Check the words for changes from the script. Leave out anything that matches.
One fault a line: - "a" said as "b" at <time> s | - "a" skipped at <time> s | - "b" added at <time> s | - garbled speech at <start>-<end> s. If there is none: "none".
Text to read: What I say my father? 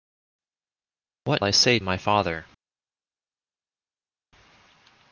none